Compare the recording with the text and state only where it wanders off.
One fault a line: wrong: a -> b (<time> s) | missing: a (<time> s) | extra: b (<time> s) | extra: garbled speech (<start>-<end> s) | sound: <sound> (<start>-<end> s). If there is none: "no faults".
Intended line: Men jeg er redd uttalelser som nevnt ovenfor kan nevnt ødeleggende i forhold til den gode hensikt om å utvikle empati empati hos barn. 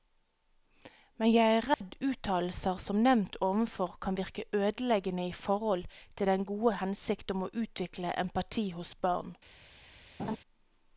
sound: dropout (1.7-1.8 s)
wrong: nevnt -> virke (4.2 s)
missing: empati (8.7 s)
sound: laugh (10.2-10.4 s)